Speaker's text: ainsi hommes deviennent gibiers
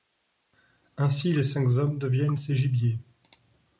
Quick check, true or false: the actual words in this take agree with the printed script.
false